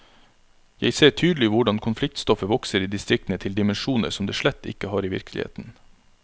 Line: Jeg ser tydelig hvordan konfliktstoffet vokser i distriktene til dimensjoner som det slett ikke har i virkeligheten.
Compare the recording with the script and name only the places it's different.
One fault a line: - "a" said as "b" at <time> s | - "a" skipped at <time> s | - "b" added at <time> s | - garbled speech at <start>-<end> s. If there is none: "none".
none